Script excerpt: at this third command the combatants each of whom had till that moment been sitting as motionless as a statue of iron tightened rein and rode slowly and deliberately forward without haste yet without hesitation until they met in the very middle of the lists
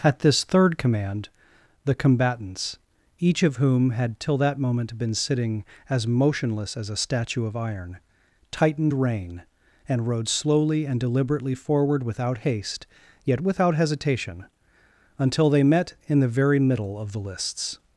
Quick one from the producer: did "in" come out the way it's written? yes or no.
yes